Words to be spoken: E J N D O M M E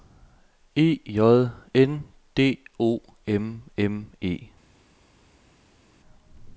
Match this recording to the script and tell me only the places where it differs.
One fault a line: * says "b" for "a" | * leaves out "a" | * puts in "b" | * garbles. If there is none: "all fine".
all fine